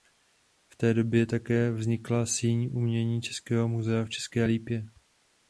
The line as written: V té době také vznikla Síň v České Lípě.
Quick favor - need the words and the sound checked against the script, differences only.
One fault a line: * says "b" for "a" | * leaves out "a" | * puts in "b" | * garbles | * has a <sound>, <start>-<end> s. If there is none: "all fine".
* puts in "umění českého muzea"